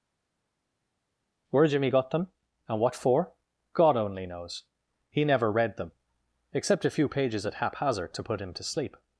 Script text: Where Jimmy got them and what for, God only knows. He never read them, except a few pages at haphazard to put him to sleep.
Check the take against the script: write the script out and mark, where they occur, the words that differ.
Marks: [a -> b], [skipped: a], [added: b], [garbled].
Where Jimmy got them and what for, God only knows. He never read them, except a few pages at haphazard to put him to sleep.